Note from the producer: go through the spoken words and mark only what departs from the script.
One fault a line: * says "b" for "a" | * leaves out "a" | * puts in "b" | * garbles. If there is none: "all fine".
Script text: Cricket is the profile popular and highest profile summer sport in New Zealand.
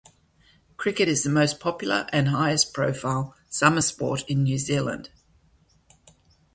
* says "most" for "profile"